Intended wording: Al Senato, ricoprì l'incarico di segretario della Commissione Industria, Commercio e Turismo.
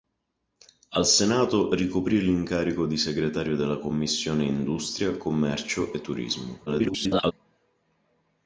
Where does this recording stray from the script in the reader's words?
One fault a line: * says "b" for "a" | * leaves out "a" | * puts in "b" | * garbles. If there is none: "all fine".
* garbles